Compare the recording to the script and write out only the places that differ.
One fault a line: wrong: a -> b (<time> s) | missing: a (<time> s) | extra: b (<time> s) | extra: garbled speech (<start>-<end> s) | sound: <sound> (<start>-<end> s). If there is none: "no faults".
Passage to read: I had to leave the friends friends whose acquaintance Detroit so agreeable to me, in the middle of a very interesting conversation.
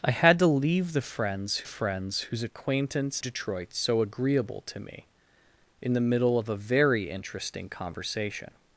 no faults